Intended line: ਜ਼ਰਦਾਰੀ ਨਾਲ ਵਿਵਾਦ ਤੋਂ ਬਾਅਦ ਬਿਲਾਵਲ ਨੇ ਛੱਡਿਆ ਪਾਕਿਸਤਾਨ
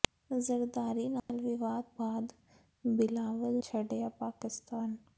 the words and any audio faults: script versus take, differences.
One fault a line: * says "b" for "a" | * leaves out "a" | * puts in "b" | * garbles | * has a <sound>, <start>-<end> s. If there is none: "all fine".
* has a dropout, 1.2-1.3 s
* leaves out "ਤੋਂ"
* leaves out "ਨੇ"